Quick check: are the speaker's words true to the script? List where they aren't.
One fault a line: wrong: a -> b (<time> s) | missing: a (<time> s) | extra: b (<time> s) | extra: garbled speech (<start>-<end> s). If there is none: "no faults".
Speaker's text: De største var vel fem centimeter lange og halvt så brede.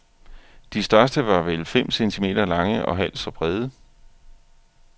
no faults